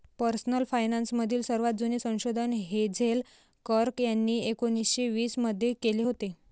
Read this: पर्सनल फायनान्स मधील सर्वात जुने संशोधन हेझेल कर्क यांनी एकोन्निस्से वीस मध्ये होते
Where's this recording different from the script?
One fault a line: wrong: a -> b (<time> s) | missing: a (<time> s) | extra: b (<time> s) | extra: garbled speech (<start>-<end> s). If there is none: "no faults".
extra: केले (5.8 s)